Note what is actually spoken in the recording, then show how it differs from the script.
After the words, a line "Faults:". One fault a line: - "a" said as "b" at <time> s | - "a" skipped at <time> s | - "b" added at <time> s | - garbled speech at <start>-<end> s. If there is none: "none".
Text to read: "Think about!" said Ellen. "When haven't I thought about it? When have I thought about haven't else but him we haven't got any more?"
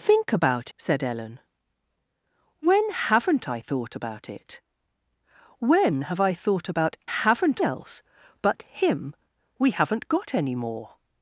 "Think about!" said Ellen. "When haven't I thought about it? When have I thought about haven't else but him we haven't got any more?"
Faults:
none